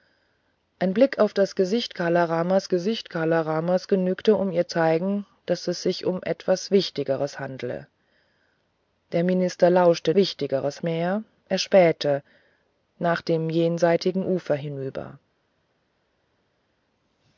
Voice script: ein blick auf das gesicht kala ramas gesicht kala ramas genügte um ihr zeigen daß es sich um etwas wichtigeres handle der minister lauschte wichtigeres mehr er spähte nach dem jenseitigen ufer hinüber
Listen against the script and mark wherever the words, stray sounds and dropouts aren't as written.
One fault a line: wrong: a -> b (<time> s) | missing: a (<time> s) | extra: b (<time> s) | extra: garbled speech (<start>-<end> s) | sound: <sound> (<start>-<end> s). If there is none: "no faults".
no faults